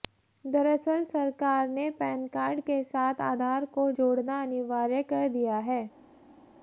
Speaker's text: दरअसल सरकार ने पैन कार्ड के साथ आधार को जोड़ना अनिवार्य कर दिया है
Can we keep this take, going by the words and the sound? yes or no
yes